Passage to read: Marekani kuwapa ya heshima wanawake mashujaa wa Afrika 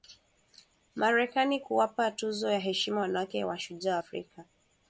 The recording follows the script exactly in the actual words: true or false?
false